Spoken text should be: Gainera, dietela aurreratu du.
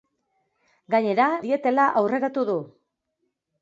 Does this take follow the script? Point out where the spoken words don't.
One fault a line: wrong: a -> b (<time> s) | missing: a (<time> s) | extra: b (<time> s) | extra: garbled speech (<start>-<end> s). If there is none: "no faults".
no faults